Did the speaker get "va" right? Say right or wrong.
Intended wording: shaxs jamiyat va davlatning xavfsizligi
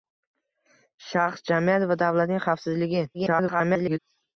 right